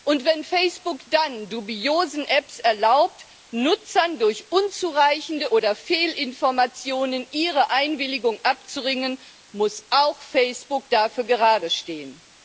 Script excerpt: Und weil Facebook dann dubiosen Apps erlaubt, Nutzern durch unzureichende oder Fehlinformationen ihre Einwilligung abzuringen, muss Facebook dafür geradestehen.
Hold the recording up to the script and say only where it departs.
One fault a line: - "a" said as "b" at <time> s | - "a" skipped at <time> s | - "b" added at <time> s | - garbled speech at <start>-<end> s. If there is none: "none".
- "weil" said as "wenn" at 0.2 s
- "auch" added at 9.9 s